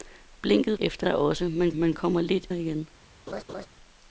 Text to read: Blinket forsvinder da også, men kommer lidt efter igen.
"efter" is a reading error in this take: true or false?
true